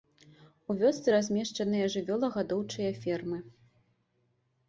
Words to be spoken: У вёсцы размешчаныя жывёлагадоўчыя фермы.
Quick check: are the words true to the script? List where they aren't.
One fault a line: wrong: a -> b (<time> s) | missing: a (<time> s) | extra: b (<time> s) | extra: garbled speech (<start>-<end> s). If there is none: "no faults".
no faults